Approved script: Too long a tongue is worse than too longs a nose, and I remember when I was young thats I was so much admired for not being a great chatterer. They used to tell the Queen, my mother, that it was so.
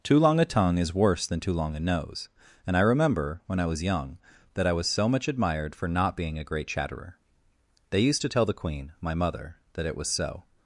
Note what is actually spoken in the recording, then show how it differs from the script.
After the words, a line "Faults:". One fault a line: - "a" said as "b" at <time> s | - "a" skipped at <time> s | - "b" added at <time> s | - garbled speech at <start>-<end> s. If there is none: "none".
Too long a tongue is worse than too long a nose, and I remember when I was young that I was so much admired for not being a great chatterer. They used to tell the Queen, my mother, that it was so.
Faults:
- "longs" said as "long" at 1.5 s
- "thats" said as "that" at 4.5 s